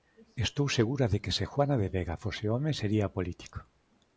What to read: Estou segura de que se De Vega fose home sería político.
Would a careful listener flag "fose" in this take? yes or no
no